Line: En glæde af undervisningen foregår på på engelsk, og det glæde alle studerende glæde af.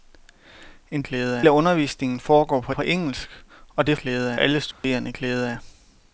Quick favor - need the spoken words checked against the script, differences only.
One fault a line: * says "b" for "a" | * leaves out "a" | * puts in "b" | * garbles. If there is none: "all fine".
all fine